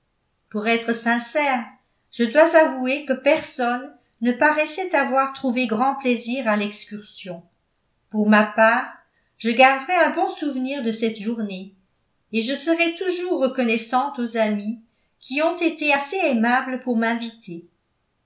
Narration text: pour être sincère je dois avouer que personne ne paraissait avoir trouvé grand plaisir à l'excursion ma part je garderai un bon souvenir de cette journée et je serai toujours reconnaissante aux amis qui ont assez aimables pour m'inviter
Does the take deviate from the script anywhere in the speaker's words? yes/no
yes